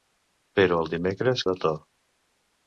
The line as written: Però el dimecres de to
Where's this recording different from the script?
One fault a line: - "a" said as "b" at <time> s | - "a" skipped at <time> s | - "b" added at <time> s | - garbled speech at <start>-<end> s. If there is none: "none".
none